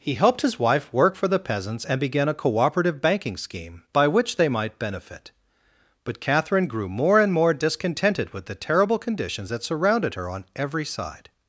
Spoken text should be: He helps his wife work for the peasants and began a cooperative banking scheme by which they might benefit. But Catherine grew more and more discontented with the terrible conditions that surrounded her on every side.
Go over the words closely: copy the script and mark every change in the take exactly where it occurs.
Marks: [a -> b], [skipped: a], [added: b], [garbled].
He [helps -> helped] his wife work for the peasants and began a cooperative banking scheme by which they might benefit. But Catherine grew more and more discontented with the terrible conditions that surrounded her on every side.